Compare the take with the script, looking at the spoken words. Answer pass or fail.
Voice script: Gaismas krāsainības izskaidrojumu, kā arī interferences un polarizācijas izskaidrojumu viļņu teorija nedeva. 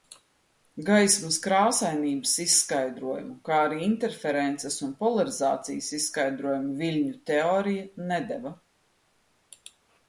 pass